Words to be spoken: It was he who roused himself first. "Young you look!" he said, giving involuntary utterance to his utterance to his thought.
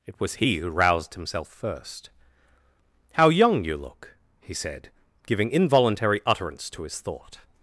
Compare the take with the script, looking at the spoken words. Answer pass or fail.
fail